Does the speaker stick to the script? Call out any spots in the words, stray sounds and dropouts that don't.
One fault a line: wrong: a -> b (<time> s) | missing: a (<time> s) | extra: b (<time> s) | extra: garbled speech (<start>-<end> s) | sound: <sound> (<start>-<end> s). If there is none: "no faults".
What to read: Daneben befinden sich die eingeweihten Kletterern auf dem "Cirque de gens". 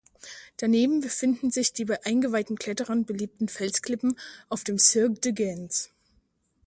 extra: bei (1.9 s)
extra: beliebten Felsklippen (3.0 s)